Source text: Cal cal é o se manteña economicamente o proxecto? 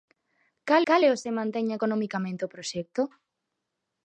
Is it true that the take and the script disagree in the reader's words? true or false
false